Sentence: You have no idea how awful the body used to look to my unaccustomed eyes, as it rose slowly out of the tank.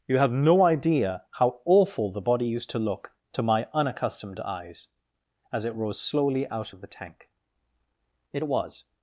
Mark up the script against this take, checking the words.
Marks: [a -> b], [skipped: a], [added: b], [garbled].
You have no idea how awful the body used to look to my unaccustomed eyes, as it rose slowly out of the tank. [added: It was]